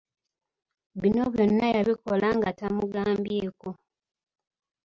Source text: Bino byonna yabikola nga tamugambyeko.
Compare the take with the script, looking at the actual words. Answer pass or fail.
pass